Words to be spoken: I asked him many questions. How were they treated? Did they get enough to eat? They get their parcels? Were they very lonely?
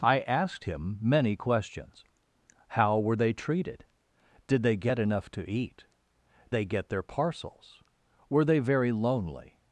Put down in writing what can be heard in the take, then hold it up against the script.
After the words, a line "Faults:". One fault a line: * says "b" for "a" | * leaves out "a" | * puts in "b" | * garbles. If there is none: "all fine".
I asked him many questions. How were they treated? Did they get enough to eat? They get their parcels? Were they very lonely?
Faults:
all fine